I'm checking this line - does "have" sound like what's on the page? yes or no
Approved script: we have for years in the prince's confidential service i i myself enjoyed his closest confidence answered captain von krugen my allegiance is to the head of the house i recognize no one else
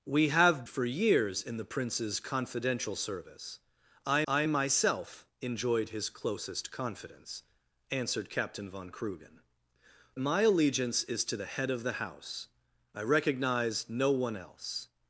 yes